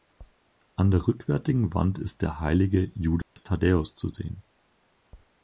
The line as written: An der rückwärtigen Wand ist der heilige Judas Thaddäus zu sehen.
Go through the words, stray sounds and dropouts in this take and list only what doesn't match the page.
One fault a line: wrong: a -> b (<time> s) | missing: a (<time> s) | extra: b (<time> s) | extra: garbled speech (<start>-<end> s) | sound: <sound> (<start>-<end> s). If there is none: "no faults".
sound: dropout (3.2-3.4 s)